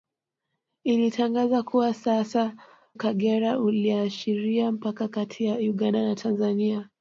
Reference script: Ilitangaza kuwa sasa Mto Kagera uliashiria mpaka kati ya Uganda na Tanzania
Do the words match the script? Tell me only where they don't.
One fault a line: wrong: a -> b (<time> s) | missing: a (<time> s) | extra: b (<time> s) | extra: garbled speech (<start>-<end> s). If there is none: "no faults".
missing: Mto (2.5 s)